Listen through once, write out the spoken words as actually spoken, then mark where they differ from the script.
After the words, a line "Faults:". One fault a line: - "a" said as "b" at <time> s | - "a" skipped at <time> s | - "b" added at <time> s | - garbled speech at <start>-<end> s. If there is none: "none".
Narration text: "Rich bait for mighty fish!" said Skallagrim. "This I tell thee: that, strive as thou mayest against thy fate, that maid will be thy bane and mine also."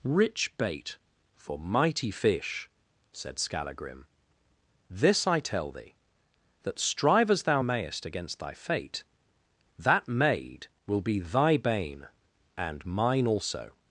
"Rich bait for mighty fish!" said Skallagrim. "This I tell thee: that, strive as thou mayest against thy fate, that maid will be thy bane and mine also."
Faults:
none